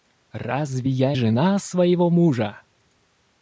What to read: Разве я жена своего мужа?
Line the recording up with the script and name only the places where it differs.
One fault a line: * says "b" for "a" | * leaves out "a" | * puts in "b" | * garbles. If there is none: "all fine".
all fine